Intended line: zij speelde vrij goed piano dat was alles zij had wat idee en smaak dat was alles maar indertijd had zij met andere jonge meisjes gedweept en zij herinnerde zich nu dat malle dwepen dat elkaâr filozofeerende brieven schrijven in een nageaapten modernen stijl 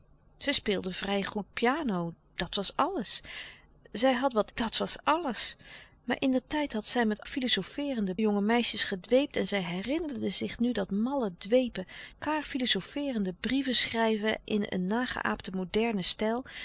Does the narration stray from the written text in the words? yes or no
yes